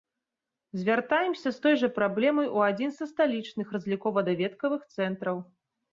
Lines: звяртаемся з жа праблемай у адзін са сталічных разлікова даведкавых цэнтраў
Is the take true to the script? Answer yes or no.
no